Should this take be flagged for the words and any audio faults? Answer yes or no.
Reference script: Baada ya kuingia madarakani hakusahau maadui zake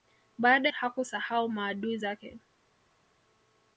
yes